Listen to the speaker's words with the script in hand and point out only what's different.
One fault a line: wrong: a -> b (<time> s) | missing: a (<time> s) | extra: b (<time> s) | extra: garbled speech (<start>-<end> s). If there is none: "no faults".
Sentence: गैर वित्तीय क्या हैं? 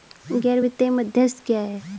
extra: मध्यस्थ (0.9 s)